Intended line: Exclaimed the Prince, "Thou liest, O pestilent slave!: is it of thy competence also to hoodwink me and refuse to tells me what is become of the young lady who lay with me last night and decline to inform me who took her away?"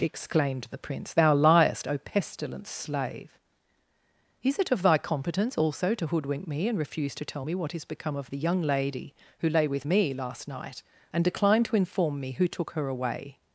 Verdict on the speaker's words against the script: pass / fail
fail